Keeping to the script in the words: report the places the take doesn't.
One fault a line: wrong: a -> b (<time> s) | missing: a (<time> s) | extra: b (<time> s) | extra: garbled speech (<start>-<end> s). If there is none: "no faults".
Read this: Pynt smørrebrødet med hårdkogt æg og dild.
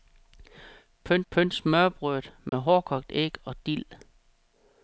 extra: pynt (1.3 s)